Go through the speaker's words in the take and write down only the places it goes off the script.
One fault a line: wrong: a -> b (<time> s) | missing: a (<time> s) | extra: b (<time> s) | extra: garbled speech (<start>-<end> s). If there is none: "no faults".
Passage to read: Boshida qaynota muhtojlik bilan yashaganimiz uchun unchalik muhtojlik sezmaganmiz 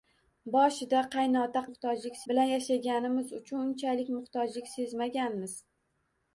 no faults